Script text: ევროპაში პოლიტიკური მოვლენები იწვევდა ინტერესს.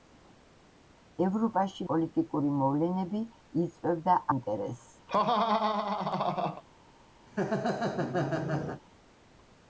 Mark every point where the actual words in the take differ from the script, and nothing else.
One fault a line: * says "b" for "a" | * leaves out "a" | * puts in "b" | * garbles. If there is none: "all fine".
all fine